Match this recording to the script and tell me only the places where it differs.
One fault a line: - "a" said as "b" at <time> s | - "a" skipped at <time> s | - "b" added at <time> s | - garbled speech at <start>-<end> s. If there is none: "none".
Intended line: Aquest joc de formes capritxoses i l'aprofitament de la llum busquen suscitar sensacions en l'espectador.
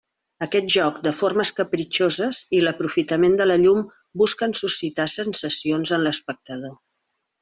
none